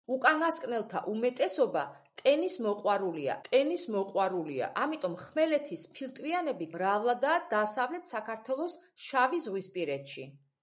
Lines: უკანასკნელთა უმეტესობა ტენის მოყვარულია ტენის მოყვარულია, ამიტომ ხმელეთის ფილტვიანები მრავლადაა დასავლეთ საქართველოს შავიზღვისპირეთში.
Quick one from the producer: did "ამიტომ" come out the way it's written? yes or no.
yes